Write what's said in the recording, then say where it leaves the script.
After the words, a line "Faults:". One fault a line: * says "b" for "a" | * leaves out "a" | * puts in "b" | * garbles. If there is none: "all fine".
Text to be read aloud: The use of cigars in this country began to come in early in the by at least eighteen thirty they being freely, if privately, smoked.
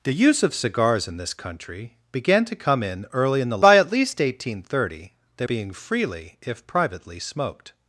The use of cigars in this country began to come in early in the by at least eighteen thirty they being freely, if privately, smoked.
Faults:
all fine